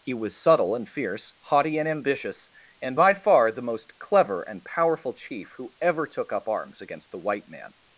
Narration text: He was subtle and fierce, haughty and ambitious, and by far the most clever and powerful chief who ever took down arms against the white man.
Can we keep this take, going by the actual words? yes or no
no